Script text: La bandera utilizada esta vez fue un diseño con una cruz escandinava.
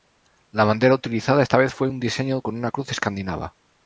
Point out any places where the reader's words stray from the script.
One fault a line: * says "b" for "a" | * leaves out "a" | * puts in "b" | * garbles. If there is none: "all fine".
all fine